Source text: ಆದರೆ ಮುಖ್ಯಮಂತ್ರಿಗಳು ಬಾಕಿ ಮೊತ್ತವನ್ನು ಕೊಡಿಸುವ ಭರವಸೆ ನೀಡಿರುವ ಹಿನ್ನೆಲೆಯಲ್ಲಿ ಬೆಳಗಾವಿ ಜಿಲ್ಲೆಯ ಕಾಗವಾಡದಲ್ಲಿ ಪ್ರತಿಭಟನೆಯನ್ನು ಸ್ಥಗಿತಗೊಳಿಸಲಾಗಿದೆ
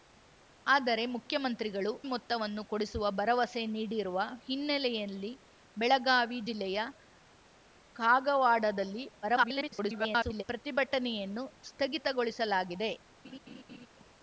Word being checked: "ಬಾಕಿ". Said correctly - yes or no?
no